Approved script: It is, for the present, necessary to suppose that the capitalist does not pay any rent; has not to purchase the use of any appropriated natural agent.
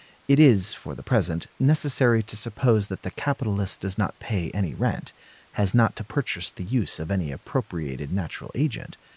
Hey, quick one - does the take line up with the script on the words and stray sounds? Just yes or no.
yes